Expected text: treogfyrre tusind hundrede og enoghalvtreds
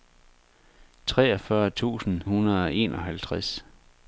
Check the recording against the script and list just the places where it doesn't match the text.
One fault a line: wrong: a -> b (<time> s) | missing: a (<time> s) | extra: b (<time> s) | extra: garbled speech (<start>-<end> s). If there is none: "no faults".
no faults